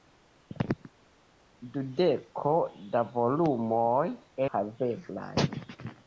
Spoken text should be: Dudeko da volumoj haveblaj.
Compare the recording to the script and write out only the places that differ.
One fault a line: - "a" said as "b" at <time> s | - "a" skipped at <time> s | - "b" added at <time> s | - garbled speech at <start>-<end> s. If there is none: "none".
none